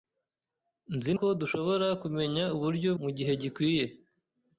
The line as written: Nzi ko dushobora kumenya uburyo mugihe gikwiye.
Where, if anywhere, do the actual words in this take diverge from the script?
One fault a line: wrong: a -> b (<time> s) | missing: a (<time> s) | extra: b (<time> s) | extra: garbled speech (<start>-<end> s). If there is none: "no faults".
no faults